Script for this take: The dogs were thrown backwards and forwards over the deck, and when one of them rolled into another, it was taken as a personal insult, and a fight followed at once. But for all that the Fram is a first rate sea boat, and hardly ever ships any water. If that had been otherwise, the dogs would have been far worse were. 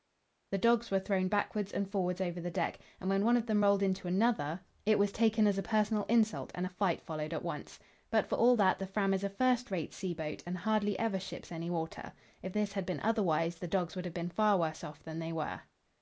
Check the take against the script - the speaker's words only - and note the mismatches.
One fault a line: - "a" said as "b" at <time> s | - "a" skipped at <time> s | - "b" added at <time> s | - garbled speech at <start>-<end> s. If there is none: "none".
- "that" said as "this" at 12.5 s
- "off than they" added at 14.8 s